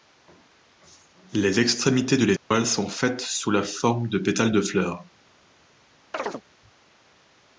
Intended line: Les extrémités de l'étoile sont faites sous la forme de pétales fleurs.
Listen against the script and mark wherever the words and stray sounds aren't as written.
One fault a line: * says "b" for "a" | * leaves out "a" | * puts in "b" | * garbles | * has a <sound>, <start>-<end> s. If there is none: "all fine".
* has a dropout, 2.4-2.5 s
* puts in "de"
* has a chirp, 6.1-6.4 s